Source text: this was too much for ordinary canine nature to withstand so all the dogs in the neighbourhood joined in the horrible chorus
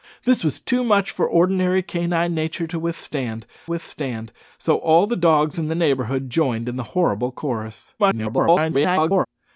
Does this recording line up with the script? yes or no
no